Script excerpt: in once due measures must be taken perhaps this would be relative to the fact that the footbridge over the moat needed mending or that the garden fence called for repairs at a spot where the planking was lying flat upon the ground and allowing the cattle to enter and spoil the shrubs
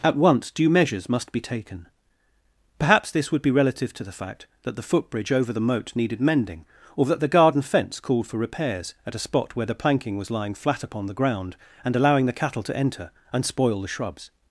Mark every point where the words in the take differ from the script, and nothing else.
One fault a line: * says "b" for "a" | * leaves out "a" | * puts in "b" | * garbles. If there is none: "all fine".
* says "at" for "in"